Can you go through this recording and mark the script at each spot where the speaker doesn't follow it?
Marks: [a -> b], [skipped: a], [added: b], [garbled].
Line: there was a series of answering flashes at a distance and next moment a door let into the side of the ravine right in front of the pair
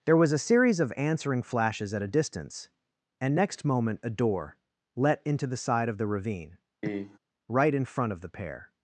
there was a series of answering flashes at a distance and next moment a door let into the side of the ravine right in front of the pair